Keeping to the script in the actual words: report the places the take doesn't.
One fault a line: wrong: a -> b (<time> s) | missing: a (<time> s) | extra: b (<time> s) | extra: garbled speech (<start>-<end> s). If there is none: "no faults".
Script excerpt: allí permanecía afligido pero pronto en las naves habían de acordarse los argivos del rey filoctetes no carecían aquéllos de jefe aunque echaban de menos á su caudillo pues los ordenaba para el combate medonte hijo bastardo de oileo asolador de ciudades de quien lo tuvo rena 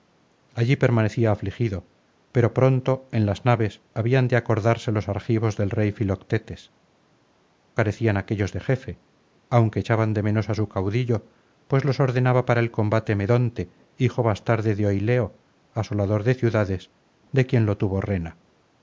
missing: no (6.7 s)